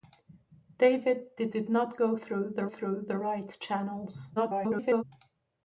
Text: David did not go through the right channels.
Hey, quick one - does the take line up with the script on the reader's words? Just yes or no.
no